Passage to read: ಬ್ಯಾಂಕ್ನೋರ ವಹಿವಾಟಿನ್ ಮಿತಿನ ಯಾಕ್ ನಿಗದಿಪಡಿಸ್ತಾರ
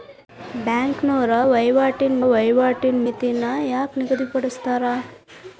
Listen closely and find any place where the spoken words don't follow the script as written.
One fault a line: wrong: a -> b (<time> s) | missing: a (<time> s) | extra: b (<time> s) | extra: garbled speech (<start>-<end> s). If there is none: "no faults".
extra: ವಹಿವಾಟಿನ್ (2.3 s)